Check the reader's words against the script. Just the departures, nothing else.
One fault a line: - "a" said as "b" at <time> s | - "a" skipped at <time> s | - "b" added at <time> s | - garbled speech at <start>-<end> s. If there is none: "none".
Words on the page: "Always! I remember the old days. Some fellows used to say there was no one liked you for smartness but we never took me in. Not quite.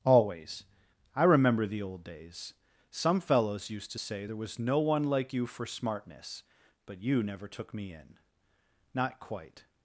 - "liked" said as "like" at 5.0 s
- "we" said as "you" at 7.0 s